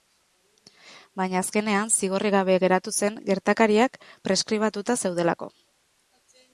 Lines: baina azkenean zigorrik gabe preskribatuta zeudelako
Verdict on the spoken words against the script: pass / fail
fail